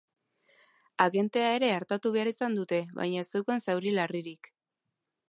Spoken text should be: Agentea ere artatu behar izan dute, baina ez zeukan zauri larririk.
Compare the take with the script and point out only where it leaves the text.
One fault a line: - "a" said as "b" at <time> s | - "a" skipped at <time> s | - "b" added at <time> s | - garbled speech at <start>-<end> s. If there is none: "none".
none